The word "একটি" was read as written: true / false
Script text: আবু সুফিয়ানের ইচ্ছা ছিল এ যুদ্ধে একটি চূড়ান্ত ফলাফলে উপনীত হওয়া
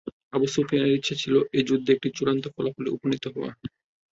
true